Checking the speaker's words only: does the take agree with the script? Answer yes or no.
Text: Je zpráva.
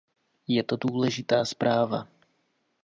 no